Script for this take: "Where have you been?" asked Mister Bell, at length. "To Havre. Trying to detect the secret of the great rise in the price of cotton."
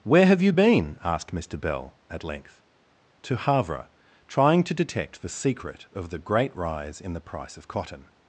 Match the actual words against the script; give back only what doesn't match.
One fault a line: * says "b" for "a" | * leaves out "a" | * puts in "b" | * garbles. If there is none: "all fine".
all fine